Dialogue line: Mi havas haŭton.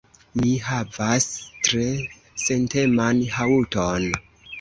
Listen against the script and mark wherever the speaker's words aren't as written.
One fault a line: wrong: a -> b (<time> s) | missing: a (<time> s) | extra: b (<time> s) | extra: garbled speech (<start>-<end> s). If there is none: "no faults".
extra: tre senteman (1.7 s)